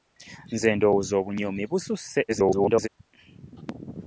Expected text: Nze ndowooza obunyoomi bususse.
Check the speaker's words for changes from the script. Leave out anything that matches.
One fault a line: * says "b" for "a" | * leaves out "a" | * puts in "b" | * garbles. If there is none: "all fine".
* garbles